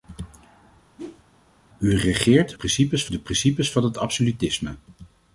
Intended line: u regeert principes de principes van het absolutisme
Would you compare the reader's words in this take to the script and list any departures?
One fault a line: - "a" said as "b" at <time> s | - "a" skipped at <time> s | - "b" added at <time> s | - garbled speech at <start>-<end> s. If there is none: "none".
none